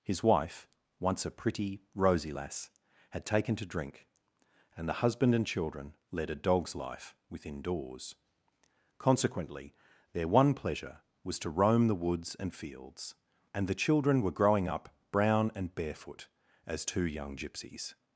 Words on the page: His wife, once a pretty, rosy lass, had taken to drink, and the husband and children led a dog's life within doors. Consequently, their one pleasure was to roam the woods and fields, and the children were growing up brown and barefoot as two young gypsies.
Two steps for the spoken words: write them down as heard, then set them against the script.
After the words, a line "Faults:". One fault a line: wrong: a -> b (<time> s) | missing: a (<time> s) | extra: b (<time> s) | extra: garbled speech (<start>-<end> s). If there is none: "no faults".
His wife, once a pretty, rosy lass, had taken to drink, and the husband and children led a dog's life within doors. Consequently, their one pleasure was to roam the woods and fields, and the children were growing up brown and barefoot as two young gypsies.
Faults:
no faults